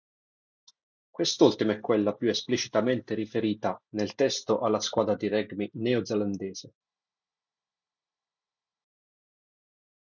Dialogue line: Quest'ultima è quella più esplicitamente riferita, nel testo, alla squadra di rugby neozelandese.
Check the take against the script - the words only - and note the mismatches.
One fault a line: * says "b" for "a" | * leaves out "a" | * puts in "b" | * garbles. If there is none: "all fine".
all fine